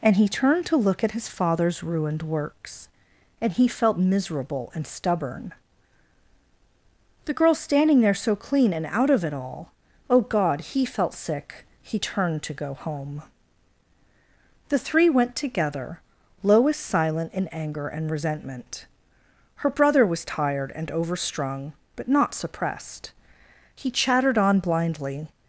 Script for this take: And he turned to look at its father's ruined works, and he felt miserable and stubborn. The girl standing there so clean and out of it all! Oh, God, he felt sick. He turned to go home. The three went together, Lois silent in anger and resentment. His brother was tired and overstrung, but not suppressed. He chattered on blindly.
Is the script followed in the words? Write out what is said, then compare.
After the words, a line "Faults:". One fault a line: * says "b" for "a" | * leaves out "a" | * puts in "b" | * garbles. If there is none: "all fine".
And he turned to look at his father's ruined works, and he felt miserable and stubborn. The girl standing there so clean and out of it all! Oh, God, he felt sick. He turned to go home. The three went together, Lois silent in anger and resentment. Her brother was tired and overstrung, but not suppressed. He chattered on blindly.
Faults:
* says "his" for "its"
* says "Her" for "His"